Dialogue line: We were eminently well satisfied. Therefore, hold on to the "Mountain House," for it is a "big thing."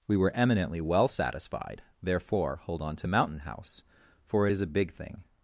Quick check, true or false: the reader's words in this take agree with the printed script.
false